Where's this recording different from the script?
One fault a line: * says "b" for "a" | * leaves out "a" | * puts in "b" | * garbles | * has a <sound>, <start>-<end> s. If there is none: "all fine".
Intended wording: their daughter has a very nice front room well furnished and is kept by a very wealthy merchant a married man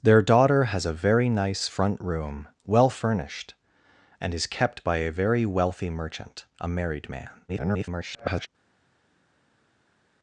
* garbles